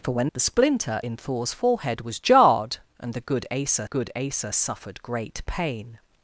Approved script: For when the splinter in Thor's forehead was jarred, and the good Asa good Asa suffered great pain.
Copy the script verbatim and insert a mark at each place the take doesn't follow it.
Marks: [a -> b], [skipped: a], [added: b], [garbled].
For when the splinter in Thor's forehead was jarred, and the good Asa good Asa suffered great pain.